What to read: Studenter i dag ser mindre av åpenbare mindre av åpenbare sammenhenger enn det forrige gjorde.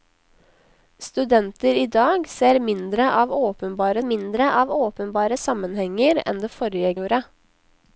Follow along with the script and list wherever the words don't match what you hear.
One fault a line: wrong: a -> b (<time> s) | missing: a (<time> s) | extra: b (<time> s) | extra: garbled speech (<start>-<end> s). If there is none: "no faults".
no faults